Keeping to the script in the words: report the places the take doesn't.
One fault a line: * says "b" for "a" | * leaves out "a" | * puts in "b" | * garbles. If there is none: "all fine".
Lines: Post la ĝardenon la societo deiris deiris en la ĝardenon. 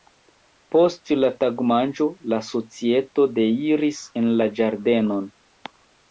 * says "tagmanĝo" for "ĝardenon"
* leaves out "deiris"